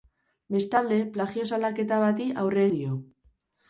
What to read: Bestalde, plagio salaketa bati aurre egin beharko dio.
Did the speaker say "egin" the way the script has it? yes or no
no